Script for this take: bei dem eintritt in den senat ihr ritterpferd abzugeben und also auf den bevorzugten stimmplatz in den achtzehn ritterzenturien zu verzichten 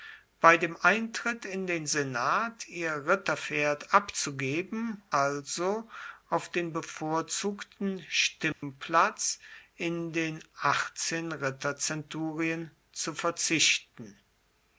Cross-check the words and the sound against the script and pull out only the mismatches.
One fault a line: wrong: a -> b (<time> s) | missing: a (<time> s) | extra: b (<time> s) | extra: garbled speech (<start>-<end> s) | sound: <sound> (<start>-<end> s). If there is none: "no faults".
missing: und (5.0 s)
sound: dropout (8.5-8.6 s)